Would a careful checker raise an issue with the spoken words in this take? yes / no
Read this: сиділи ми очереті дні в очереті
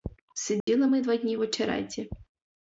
yes